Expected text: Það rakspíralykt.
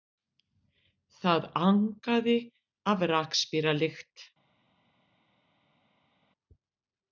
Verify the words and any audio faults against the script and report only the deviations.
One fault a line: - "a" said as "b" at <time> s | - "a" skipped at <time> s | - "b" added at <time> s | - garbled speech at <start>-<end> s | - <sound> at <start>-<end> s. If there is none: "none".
- "angaði af" added at 1.7 s